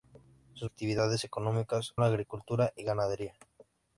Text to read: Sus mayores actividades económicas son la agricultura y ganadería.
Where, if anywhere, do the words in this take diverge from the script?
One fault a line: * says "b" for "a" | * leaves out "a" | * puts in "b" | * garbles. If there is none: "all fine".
* leaves out "mayores"
* leaves out "son"